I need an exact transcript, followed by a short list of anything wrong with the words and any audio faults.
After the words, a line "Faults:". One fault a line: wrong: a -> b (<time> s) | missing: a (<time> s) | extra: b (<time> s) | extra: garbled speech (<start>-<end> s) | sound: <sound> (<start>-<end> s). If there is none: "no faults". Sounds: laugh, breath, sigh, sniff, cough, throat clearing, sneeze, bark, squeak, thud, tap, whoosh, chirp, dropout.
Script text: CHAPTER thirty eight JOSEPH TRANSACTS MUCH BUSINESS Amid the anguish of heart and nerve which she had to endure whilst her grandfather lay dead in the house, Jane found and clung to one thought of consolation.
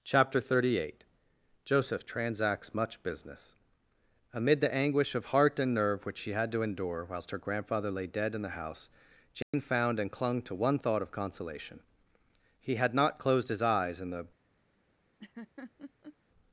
CHAPTER thirty eight JOSEPH TRANSACTS MUCH BUSINESS Amid the anguish of heart and nerve which she had to endure whilst her grandfather lay dead in the house, Jane found and clung to one thought of consolation. He had not closed his eyes in the
Faults:
sound: dropout (9.4-9.5 s)
extra: He had not closed his eyes in the (12.6 s)
sound: laugh (15.2-16.2 s)